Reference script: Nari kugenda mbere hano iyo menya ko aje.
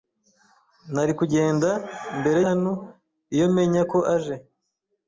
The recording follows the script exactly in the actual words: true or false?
true